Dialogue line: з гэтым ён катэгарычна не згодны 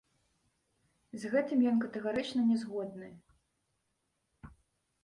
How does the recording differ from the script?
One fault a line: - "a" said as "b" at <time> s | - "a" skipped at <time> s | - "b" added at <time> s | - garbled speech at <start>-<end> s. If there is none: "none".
none